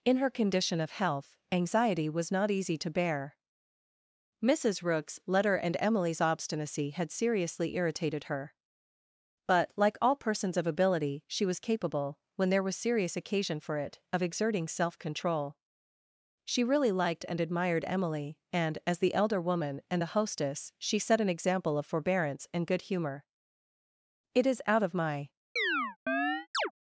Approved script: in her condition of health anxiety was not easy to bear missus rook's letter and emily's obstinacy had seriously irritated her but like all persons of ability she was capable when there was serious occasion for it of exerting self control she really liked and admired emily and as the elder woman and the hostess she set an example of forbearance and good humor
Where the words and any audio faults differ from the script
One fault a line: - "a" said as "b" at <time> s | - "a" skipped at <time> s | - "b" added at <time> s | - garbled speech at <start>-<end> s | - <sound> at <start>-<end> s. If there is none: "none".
- "it is out of my" added at 24.3 s
- chirp at 25.6-26.7 s